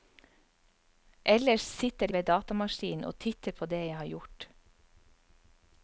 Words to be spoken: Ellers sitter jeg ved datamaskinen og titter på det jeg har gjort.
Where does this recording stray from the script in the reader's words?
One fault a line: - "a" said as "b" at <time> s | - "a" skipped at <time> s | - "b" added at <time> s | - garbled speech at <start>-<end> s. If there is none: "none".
- "jeg" skipped at 2.1 s